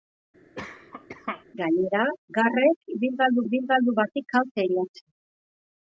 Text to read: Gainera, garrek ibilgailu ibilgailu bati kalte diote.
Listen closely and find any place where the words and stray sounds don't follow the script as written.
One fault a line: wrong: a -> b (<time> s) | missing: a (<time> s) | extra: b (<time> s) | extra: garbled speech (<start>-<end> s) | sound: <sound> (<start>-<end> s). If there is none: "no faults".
sound: cough (0.5-1.4 s)